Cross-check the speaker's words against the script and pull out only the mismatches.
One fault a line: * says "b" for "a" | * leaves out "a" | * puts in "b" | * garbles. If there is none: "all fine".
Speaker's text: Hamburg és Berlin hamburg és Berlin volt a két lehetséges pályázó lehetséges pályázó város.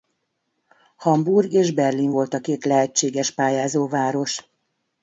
* leaves out "hamburg és Berlin"
* leaves out "lehetséges pályázó"